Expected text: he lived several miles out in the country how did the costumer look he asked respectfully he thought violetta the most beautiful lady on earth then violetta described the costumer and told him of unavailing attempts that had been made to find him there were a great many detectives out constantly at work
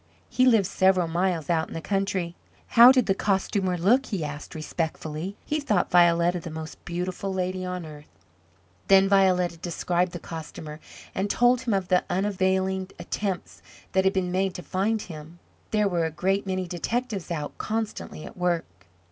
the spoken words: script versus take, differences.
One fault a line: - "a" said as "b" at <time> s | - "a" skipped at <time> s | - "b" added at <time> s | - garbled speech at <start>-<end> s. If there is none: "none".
- "the" added at 11.9 s